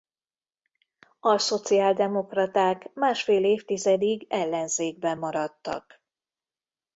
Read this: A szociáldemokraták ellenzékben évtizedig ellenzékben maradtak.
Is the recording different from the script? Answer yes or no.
yes